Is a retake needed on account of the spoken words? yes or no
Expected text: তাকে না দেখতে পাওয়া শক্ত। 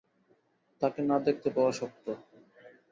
no